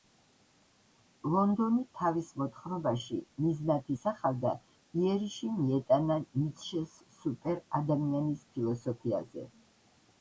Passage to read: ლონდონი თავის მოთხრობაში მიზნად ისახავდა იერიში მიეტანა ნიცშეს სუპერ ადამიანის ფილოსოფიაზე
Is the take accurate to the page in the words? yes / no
yes